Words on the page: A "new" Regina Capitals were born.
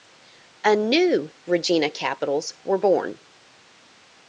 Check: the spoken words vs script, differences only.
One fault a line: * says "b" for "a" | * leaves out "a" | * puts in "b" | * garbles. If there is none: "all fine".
all fine